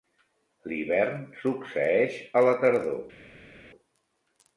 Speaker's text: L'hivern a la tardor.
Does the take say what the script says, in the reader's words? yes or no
no